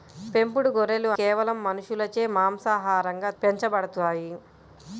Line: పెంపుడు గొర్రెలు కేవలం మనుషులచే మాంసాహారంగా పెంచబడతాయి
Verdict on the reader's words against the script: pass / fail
pass